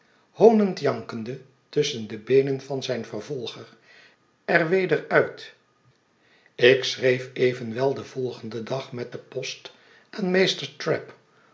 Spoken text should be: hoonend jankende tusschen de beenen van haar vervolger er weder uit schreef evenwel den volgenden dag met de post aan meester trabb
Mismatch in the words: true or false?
true